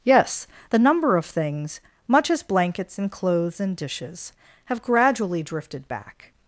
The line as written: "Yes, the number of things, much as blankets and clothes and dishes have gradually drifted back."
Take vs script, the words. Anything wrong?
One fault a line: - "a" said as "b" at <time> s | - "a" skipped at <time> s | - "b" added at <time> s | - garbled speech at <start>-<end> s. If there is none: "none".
none